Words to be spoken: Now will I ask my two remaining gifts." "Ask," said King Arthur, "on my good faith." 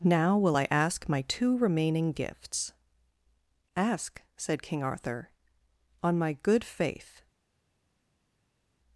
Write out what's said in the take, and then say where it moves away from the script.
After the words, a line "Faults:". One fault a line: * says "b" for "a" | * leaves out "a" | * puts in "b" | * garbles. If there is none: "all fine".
Now will I ask my two remaining gifts." "Ask," said King Arthur, "on my good faith."
Faults:
all fine